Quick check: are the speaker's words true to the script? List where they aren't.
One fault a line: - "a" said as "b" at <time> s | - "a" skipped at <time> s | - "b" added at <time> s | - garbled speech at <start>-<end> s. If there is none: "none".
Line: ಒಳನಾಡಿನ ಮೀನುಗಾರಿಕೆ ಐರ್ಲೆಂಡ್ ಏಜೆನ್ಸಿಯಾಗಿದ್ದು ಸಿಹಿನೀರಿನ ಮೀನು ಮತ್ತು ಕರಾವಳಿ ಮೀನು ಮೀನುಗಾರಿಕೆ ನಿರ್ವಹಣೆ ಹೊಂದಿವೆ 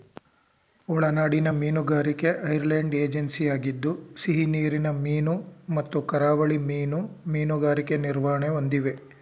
none